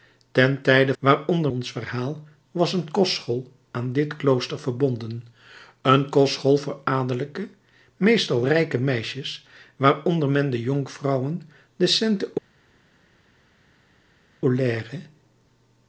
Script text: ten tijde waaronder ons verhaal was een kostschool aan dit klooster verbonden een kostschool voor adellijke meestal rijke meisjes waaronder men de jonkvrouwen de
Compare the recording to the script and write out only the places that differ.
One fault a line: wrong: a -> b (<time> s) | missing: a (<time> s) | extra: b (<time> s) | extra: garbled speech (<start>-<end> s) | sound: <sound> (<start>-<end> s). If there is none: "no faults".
no faults